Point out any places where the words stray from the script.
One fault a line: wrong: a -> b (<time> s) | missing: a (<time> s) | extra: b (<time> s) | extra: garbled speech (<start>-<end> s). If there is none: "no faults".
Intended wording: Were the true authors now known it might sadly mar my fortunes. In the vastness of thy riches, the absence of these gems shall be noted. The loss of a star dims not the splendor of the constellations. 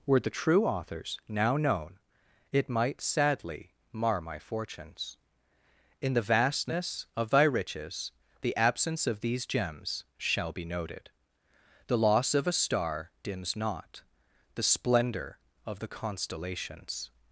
no faults